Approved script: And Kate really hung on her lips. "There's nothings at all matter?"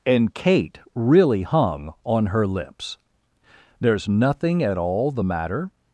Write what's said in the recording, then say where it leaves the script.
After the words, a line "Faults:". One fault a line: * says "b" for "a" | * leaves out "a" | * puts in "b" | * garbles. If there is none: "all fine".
And Kate really hung on her lips. "There's nothing at all the matter?"
Faults:
* says "nothing" for "nothings"
* puts in "the"